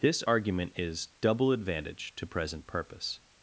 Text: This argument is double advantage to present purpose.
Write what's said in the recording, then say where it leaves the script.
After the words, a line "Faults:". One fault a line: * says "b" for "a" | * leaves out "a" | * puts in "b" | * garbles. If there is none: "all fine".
This argument is double advantage to present purpose.
Faults:
all fine